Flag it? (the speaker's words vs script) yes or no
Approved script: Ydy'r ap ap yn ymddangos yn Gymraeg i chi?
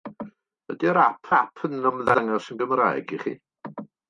no